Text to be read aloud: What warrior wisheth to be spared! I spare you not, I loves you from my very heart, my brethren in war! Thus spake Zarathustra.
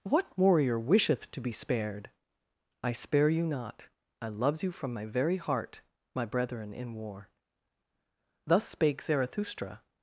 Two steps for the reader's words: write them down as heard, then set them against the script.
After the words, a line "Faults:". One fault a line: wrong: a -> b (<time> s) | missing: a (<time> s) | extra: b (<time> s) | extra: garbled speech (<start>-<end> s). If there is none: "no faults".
What warrior wisheth to be spared! I spare you not, I loves you from my very heart, my brethren in war! Thus spake Zarathustra.
Faults:
no faults